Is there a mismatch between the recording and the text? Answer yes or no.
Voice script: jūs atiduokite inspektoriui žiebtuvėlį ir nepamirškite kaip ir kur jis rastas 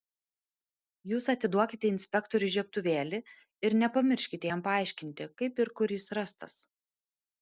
yes